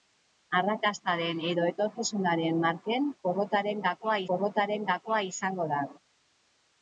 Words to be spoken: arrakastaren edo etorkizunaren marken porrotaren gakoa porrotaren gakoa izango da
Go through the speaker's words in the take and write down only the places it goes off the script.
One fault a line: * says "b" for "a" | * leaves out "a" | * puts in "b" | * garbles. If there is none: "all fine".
all fine